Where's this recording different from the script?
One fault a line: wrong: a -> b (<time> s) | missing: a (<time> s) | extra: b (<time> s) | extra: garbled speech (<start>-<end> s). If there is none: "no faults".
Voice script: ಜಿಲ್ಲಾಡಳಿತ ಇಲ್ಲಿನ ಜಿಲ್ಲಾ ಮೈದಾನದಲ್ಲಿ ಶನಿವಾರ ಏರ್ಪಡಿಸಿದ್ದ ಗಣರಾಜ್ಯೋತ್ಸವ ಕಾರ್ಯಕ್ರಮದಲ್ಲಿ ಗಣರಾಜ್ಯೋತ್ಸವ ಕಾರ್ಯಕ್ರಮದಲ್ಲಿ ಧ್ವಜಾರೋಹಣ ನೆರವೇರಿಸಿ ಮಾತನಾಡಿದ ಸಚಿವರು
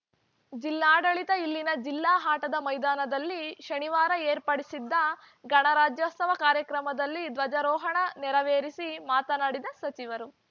extra: ಆಟದ (2.2 s)
missing: ಗಣರಾಜ್ಯೋತ್ಸವ ಕಾರ್ಯಕ್ರಮದಲ್ಲಿ (7.2 s)